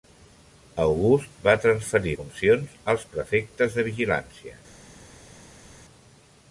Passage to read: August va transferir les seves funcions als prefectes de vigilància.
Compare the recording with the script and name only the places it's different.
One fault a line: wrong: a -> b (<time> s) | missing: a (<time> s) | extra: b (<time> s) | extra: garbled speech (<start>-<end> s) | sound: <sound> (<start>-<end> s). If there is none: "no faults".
missing: les seves (2.1 s)